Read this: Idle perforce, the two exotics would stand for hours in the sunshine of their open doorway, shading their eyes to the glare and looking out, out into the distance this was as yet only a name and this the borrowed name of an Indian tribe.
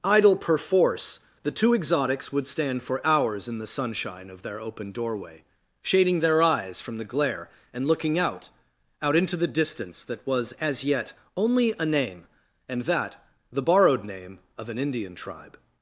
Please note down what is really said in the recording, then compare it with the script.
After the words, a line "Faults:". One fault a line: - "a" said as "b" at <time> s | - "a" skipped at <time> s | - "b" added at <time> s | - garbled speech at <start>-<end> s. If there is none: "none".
Idle perforce, the two exotics would stand for hours in the sunshine of their open doorway, shading their eyes from the glare and looking out, out into the distance that was as yet only a name and that the borrowed name of an Indian tribe.
Faults:
- "to" said as "from" at 6.8 s
- "this" said as "that" at 10.0 s
- "this" said as "that" at 12.8 s